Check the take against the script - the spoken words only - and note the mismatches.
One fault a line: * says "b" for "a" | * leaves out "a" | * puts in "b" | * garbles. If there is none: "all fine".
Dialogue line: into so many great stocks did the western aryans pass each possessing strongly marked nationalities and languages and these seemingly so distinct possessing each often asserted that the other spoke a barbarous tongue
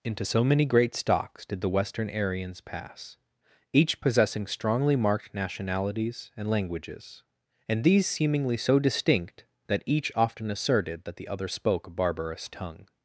* says "that" for "possessing"